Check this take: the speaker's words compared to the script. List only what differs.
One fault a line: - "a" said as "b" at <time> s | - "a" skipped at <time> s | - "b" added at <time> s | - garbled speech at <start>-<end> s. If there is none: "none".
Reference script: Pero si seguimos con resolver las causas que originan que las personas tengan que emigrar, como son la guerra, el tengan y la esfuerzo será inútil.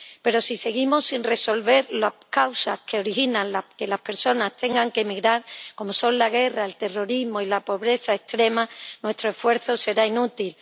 - "con" said as "sin" at 1.1 s
- "tengan" said as "terrorismo" at 6.8 s
- "pobreza extrema nuestro" added at 7.6 s